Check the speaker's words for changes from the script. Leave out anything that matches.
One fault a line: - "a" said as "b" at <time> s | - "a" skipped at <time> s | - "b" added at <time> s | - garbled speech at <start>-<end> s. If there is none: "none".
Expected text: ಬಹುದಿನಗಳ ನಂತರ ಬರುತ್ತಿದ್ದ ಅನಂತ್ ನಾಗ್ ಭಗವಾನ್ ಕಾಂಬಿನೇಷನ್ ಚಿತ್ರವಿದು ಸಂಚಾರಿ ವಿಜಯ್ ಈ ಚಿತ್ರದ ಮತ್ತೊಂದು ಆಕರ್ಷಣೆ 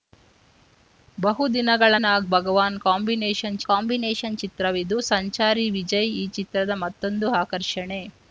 - "ನಂತರ ಬರುತ್ತಿದ್ದ ಅನಂತ್" skipped at 1.9 s
- "ಕಾಂಬಿನೇಷನ್" added at 3.7 s